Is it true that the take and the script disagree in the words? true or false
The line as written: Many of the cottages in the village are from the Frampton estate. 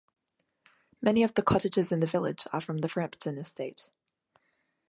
false